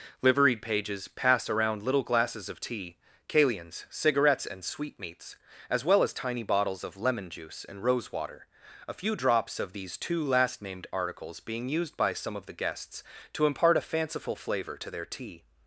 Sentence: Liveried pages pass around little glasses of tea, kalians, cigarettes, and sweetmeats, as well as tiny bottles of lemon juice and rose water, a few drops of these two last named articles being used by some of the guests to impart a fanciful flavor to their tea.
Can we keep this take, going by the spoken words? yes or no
yes